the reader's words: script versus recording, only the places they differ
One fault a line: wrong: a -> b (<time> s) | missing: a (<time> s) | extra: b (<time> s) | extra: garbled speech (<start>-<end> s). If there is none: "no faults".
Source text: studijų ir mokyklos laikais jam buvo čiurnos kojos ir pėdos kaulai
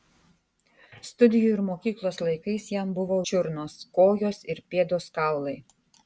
no faults